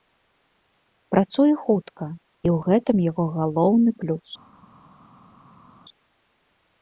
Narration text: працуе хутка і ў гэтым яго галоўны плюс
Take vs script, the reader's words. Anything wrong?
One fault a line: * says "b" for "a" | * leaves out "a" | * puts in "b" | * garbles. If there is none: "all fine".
all fine